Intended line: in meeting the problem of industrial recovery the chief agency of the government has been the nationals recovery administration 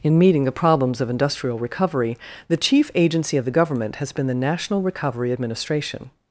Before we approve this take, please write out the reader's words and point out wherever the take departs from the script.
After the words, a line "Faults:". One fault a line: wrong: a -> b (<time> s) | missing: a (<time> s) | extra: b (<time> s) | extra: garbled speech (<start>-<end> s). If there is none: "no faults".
in meeting the problems of industrial recovery the chief agency of the government has been the national recovery administration
Faults:
wrong: problem -> problems (0.5 s)
wrong: nationals -> national (4.3 s)